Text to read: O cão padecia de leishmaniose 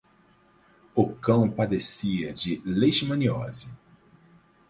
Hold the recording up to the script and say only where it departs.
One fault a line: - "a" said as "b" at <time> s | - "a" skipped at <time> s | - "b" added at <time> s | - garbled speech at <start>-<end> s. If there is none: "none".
none